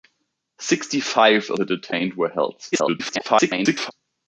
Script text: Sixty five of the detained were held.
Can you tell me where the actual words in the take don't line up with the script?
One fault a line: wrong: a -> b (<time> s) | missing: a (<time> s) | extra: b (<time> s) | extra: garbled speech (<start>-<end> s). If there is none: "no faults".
extra: garbled speech (2.7-3.9 s)